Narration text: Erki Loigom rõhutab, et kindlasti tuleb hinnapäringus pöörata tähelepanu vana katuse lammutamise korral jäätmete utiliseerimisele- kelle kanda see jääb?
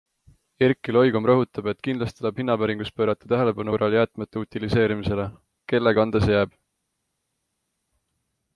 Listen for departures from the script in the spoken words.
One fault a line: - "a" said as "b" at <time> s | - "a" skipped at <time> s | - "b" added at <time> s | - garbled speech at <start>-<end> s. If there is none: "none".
- "vana katuse lammutamise" skipped at 3.8 s